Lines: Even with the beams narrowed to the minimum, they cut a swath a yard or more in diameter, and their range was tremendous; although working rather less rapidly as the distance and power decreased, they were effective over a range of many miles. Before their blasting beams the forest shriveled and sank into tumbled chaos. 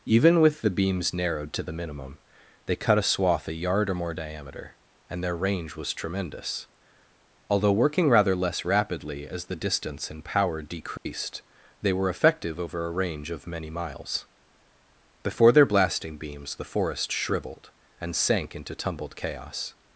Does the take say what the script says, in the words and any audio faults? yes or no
no